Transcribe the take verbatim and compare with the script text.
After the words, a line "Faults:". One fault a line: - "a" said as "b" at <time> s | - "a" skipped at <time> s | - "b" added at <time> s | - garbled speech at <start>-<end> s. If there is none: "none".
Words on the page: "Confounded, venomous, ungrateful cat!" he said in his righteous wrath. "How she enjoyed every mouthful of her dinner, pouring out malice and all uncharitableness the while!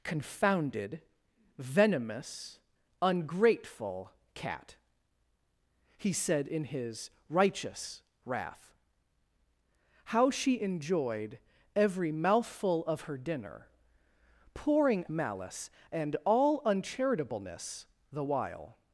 "Confounded, venomous, ungrateful cat!" he said in his righteous wrath. "How she enjoyed every mouthful of her dinner, pouring malice and all uncharitableness the while!
Faults:
- "out" skipped at 15.1 s